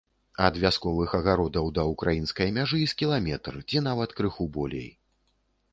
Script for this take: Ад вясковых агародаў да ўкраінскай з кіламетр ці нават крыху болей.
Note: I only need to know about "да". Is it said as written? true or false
true